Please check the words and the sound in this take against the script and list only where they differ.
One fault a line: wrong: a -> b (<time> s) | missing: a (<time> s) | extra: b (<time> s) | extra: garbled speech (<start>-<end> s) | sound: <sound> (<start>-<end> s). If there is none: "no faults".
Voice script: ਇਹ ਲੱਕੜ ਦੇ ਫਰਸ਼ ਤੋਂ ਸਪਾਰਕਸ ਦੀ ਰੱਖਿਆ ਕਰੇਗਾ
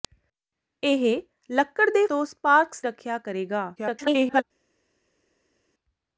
missing: ਫਰਸ਼ (2.0 s)
missing: ਦੀ (2.8 s)
extra: garbled speech (3.8-4.4 s)